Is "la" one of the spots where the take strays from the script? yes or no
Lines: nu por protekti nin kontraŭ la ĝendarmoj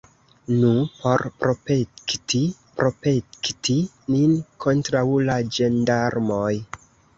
no